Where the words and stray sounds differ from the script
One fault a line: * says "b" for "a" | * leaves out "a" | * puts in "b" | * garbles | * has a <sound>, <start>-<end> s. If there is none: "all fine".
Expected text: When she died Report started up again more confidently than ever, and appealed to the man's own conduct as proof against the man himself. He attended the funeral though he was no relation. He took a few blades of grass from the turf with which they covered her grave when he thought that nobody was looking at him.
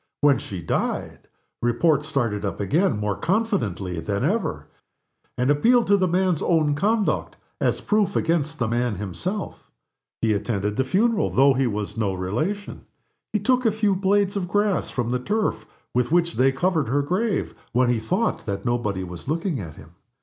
all fine